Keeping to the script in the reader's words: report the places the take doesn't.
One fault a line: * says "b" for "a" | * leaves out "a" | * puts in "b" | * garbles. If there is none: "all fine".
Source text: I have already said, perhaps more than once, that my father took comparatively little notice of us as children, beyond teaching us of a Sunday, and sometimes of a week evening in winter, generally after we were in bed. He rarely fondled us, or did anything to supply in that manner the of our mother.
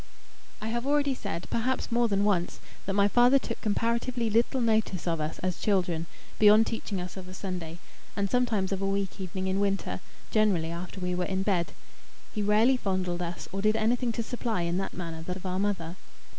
all fine